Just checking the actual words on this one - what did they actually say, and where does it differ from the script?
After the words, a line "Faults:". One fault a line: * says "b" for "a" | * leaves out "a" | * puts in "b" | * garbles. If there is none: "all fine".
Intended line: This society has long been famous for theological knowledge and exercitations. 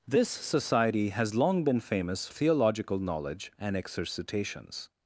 This society has long been famous theological knowledge and exercitations.
Faults:
* leaves out "for"